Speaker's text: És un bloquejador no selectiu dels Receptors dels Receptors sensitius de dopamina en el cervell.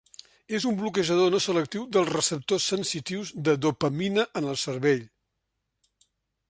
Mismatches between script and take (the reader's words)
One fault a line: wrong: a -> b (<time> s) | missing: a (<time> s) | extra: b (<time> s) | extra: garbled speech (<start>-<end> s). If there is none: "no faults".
missing: dels Receptors (2.7 s)